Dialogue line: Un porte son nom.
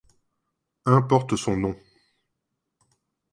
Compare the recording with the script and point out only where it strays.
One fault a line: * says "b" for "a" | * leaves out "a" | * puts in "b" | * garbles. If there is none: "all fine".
all fine